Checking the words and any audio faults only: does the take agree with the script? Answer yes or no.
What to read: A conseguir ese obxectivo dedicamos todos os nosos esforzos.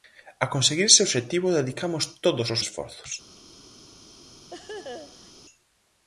no